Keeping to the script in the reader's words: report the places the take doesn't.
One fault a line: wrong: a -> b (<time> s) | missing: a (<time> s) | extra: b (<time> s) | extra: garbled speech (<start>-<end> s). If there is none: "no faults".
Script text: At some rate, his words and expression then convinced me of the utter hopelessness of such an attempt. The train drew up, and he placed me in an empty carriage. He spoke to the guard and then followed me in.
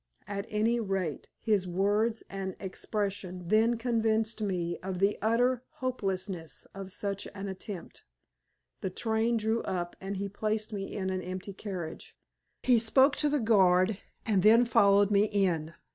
wrong: some -> any (0.5 s)